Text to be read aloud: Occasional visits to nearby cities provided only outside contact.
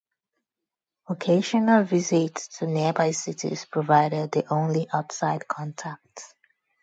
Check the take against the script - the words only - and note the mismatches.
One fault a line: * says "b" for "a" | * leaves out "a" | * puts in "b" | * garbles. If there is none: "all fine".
* puts in "the"